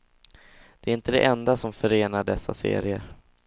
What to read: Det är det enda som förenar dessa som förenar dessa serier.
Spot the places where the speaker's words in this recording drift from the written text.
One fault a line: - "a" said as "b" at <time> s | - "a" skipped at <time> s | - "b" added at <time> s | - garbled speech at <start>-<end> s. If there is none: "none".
- "inte" added at 0.9 s
- "som förenar dessa" skipped at 2.5 s